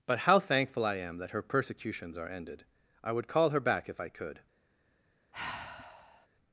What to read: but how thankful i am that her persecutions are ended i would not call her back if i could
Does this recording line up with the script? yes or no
no